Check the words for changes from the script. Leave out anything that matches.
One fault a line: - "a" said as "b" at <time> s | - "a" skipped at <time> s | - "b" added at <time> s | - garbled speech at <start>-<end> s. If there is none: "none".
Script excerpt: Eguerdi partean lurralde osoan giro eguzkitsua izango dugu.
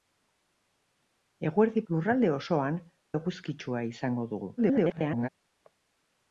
- "partean" skipped at 1.8 s
- "giro" skipped at 2.8 s
- garbled speech at 4.6-5.3 s